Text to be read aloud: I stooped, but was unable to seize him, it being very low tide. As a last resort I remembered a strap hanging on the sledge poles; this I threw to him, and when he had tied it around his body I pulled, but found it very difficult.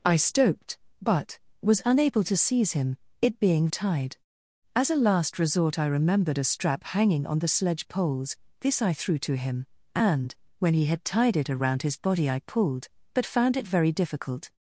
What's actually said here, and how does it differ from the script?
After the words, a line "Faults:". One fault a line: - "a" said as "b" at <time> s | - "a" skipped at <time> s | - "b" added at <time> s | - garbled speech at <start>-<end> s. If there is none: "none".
I stooped, but was unable to seize him, it being tide. As a last resort I remembered a strap hanging on the sledge poles; this I threw to him, and when he had tied it around his body I pulled, but found it very difficult.
Faults:
- "very low" skipped at 3.7 s